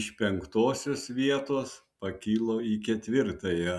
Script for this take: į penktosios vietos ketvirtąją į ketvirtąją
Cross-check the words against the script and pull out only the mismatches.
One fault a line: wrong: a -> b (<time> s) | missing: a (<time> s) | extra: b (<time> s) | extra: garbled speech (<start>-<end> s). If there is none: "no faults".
wrong: į -> iš (0.0 s)
wrong: ketvirtąją -> pakilo (2.0 s)